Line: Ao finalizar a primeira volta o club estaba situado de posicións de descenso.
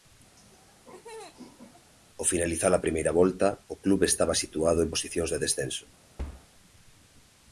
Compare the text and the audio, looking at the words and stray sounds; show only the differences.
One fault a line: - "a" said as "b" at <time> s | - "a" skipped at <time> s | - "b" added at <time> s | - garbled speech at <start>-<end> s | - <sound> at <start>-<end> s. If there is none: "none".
- laugh at 0.4-1.9 s
- "de" said as "en" at 4.8 s
- thud at 6.2-6.5 s